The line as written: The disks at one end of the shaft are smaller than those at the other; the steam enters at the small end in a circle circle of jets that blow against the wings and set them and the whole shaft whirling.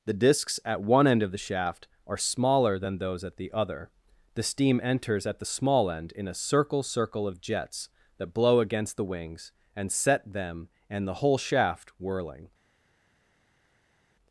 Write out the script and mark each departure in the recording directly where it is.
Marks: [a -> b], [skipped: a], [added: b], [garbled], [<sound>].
The disks at one end of the shaft are smaller than those at the other; the steam enters at the small end in a circle circle of jets that blow against the wings and set them and the whole shaft whirling.